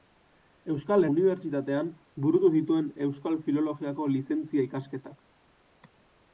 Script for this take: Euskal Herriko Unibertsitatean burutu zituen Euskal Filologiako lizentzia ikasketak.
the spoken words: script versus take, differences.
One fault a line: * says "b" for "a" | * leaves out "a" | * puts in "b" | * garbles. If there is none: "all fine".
* leaves out "Herriko"